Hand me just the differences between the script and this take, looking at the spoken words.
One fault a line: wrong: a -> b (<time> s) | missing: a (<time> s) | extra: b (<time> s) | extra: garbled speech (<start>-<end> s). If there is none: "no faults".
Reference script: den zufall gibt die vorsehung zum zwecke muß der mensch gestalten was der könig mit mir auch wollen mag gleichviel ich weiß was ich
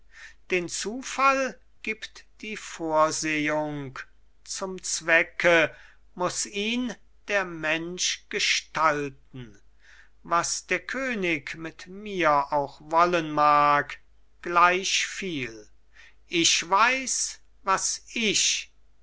extra: ihn (6.5 s)